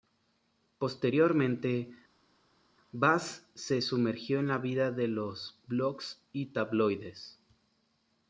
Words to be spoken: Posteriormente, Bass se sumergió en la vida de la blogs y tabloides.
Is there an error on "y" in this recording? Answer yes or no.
no